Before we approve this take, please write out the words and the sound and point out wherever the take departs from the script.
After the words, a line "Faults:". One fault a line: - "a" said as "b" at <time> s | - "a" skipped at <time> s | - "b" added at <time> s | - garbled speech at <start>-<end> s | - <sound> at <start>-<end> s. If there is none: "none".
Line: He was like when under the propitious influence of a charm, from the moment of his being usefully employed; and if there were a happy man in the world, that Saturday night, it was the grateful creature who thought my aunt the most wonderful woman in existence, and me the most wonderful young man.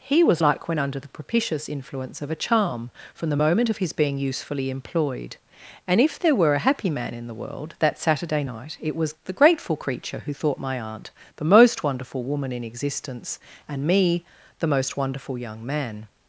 He was like when under the propitious influence of a charm, from the moment of his being usefully employed; and if there were a happy man in the world, that Saturday night, it was the grateful creature who thought my aunt the most wonderful woman in existence, and me the most wonderful young man.
Faults:
none